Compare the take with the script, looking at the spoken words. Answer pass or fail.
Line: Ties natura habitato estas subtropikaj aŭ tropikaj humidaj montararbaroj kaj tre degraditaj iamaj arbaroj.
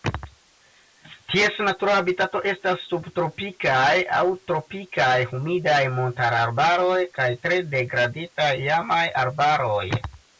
pass